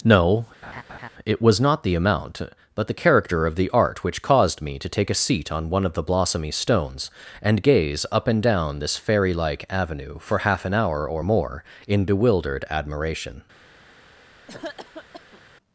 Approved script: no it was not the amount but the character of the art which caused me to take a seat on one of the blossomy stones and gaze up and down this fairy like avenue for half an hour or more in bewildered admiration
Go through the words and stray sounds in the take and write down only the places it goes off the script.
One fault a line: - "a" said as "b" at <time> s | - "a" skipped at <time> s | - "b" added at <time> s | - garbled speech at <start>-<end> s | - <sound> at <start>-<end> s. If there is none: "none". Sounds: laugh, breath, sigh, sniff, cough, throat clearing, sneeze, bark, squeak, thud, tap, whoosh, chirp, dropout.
- laugh at 0.6-1.1 s
- cough at 14.5-15.4 s